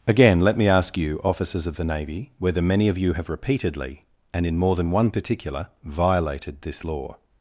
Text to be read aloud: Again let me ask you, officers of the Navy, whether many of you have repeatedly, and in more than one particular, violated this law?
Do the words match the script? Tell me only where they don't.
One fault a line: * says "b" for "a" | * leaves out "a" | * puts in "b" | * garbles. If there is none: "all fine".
all fine